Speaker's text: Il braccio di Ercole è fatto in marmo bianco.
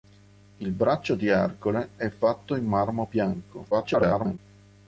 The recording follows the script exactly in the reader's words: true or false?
false